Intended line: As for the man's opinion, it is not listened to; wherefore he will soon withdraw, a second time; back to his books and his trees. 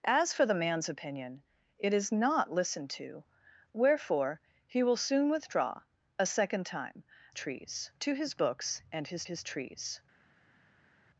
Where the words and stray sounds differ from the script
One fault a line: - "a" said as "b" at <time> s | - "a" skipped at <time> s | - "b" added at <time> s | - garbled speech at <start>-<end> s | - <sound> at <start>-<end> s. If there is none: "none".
- "back" said as "trees" at 7.3 s
- "his" added at 9.2 s